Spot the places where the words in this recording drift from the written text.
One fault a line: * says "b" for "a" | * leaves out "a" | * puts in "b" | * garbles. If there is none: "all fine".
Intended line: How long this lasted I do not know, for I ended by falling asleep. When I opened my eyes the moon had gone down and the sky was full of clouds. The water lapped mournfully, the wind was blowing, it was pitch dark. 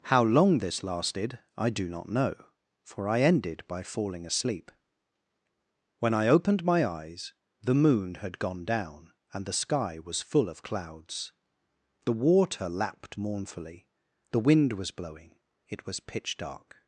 all fine